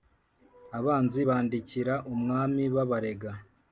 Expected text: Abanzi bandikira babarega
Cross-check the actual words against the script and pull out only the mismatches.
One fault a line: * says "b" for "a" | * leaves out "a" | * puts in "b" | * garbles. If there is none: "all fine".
* puts in "umwami"